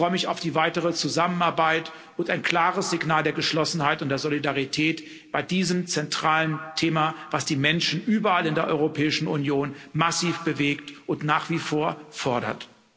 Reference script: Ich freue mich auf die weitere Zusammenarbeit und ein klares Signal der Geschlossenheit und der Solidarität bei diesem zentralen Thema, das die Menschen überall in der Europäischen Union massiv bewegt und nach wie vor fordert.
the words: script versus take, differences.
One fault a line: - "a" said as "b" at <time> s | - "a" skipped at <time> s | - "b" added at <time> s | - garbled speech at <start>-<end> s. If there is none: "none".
none